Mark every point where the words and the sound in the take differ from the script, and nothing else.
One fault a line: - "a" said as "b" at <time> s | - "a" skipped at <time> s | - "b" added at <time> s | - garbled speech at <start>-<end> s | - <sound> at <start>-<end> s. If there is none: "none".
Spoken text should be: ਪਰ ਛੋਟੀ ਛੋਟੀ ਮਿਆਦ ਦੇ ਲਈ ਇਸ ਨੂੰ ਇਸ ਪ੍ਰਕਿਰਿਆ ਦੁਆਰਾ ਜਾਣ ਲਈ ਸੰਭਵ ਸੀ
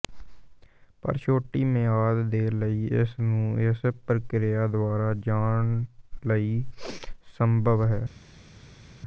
- "ਛੋਟੀ" skipped at 1.6 s
- "ਸੀ" said as "ਹੈ" at 7.8 s